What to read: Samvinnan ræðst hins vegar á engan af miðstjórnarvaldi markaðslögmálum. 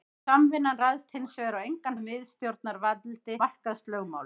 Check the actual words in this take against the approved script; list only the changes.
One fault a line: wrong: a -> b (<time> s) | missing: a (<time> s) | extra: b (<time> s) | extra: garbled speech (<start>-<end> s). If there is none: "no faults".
no faults